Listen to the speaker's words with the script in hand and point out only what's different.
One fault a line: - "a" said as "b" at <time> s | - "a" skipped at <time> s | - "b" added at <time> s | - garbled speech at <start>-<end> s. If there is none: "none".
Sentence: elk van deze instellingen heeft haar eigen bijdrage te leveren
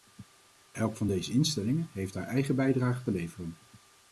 none